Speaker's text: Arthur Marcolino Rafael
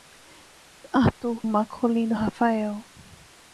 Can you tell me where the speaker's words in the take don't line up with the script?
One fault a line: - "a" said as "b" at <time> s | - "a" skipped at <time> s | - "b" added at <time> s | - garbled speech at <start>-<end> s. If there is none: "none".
none